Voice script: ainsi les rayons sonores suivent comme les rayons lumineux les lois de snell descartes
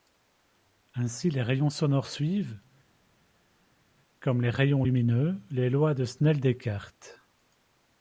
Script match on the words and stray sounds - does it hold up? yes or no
yes